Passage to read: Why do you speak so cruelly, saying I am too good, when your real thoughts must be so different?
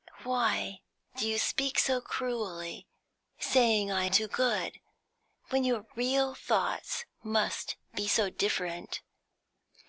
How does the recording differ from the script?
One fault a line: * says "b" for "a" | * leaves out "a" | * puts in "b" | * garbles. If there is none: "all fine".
* leaves out "am"